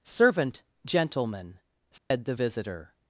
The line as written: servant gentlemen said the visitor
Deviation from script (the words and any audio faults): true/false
true